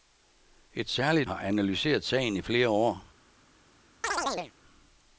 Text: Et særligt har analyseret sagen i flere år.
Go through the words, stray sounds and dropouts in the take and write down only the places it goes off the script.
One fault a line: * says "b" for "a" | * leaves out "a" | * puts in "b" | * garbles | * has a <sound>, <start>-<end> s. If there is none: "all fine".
* has a chirp, 4.0-4.5 s